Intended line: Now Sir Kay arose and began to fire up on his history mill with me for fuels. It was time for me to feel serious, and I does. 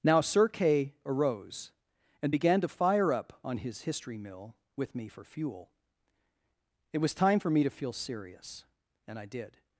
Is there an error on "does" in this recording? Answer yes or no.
yes